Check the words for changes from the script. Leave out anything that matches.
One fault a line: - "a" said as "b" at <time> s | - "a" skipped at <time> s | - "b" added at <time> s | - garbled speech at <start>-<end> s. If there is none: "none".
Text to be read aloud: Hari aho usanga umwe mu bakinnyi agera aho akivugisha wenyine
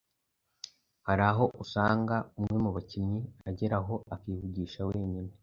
none